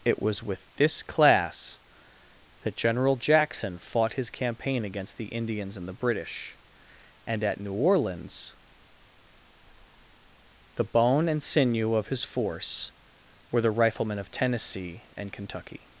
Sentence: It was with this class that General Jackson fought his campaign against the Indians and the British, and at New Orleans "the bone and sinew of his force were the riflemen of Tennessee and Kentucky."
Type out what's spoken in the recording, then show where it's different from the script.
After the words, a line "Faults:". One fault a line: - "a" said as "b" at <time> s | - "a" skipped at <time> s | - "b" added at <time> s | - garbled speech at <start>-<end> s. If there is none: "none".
It was with this class that General Jackson fought his campaign against the Indians and the British, and at New Orleans "the bone and sinew of his force were the riflemen of Tennessee and Kentucky."
Faults:
none